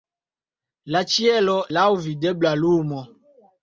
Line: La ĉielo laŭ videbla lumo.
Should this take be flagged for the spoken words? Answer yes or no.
no